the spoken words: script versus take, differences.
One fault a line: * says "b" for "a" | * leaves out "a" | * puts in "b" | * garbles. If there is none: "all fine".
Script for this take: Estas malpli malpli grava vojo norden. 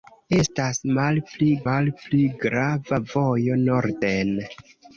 all fine